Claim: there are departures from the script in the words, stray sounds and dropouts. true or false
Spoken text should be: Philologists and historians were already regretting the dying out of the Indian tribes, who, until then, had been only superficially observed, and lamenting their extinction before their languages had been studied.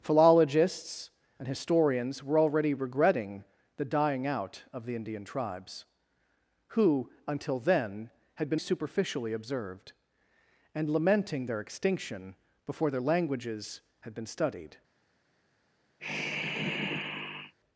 true